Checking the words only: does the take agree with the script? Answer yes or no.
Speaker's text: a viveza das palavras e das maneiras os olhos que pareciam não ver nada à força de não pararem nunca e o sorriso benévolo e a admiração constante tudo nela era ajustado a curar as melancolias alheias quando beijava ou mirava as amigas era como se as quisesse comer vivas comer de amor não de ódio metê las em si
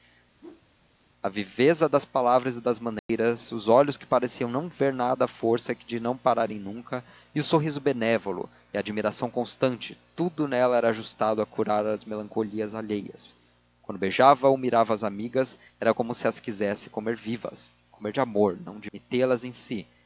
no